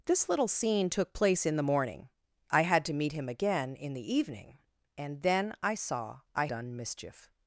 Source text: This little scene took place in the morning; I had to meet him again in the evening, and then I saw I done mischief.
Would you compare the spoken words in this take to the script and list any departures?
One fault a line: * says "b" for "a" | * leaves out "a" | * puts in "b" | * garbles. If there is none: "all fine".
all fine